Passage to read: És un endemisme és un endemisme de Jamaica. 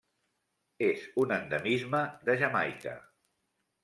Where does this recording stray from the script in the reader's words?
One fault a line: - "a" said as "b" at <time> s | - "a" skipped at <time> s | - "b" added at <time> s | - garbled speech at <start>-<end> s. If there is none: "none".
- "és un endemisme" skipped at 2.0 s